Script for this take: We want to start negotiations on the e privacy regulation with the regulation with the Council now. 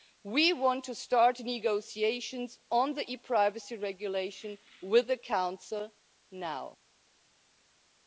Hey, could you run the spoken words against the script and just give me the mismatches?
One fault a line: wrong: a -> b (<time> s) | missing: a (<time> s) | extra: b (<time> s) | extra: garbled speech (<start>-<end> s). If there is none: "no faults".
missing: regulation with the (5.2 s)